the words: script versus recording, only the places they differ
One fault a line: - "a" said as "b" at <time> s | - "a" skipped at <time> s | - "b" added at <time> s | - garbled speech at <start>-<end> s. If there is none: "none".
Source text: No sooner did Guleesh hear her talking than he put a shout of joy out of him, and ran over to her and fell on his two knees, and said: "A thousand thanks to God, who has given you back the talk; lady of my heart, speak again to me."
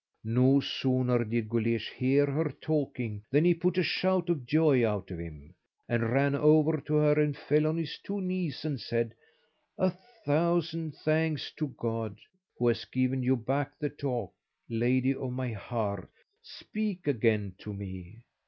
none